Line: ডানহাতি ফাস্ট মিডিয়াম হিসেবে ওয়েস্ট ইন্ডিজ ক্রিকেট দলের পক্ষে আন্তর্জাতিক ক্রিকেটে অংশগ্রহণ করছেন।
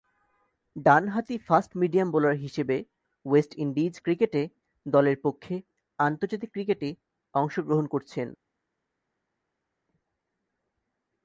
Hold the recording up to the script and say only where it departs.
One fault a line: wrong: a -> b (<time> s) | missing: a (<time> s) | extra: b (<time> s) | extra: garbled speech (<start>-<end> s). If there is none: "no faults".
extra: বোলার (2.1 s)